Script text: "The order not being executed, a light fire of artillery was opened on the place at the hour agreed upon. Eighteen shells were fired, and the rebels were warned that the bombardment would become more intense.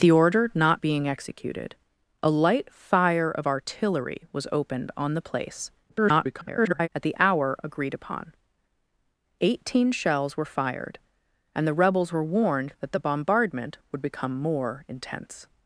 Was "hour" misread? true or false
false